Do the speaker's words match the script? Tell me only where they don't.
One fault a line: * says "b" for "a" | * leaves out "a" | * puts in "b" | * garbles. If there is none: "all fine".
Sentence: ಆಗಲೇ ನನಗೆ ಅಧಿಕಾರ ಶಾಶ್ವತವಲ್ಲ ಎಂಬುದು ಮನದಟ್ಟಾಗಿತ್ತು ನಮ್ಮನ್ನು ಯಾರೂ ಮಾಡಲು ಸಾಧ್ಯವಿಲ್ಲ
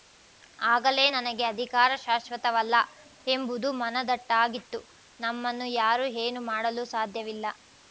* puts in "ಏನೂ"